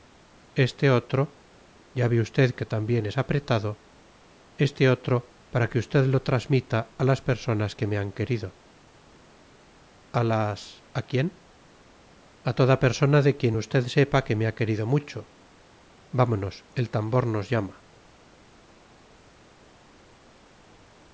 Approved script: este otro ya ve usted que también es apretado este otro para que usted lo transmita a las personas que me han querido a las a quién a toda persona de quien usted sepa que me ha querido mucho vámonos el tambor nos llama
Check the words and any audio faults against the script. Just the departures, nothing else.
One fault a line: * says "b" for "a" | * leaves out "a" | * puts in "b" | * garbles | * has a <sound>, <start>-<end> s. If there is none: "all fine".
all fine